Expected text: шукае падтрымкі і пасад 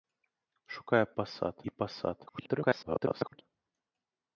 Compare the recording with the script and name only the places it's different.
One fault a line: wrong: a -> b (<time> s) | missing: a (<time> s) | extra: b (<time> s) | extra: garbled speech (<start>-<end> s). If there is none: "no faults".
wrong: падтрымкі -> пасад (1.2 s)
extra: garbled speech (2.3-3.4 s)